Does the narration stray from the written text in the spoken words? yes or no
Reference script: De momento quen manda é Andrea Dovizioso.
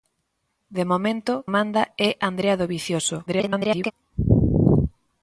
yes